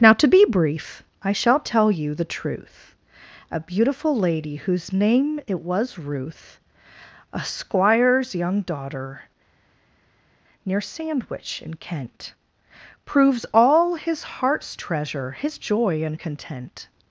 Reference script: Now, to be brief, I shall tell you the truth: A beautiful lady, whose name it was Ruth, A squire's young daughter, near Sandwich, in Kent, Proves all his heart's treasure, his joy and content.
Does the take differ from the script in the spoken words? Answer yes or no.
no